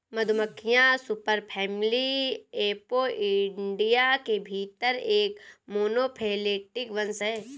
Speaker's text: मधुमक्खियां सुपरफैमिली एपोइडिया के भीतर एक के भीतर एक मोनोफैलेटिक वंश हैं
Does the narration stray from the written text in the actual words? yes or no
yes